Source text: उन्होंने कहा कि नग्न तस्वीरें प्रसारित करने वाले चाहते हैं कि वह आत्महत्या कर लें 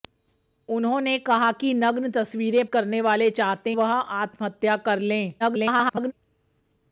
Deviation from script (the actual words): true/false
true